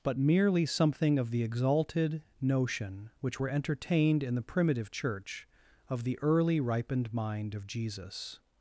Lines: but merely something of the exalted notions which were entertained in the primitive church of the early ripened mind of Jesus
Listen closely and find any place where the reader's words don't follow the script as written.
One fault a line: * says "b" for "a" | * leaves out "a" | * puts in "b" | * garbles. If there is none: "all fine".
* says "notion" for "notions"